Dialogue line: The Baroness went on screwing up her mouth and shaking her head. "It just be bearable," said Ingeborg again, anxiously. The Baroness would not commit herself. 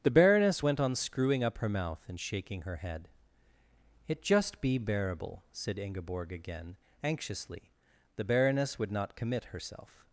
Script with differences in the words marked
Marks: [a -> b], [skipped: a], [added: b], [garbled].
The Baroness went on screwing up her mouth and shaking her head. "It just be bearable," said Ingeborg again, anxiously. The Baroness would not commit herself.